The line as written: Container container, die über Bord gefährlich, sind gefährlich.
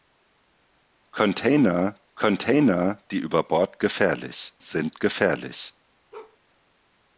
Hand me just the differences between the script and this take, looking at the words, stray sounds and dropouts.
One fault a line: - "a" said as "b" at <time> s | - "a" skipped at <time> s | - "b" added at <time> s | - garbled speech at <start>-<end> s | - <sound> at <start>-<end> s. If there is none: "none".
- bark at 6.1-6.4 s